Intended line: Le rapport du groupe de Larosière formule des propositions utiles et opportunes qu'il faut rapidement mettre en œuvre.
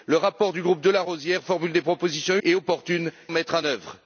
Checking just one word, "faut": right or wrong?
wrong